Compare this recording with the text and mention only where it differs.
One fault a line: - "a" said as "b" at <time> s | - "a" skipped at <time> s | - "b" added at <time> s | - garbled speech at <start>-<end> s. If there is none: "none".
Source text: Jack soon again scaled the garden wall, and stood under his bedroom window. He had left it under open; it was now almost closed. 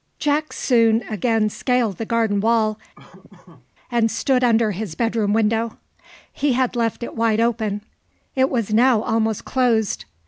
- "under" said as "wide" at 7.1 s